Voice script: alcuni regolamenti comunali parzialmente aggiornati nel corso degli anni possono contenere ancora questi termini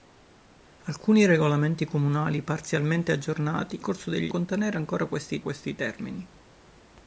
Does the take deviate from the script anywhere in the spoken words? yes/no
yes